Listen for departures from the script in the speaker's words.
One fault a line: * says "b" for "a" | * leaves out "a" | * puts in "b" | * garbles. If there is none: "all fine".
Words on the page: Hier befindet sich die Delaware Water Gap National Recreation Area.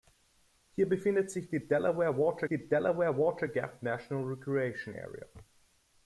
* puts in "die Delaware Water"